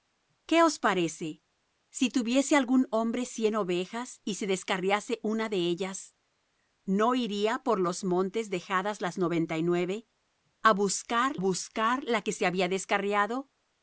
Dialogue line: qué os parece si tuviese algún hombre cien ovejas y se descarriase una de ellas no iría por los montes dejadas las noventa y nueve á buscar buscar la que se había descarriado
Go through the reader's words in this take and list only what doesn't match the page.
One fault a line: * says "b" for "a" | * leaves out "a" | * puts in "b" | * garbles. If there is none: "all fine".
all fine